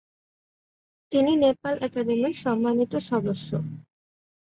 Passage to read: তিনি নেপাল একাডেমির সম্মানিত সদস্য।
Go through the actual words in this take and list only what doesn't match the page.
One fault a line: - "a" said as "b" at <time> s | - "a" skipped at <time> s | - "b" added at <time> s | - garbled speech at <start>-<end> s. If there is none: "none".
none